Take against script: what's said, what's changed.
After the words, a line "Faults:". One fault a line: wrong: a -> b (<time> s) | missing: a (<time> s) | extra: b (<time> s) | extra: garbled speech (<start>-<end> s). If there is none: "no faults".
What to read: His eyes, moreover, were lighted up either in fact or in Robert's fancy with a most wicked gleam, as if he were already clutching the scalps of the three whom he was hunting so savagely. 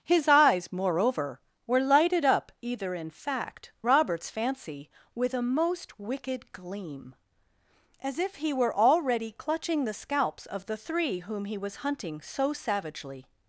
His eyes, moreover, were lighted up either in fact Robert's fancy with a most wicked gleam, as if he were already clutching the scalps of the three whom he was hunting so savagely.
Faults:
missing: or in (3.7 s)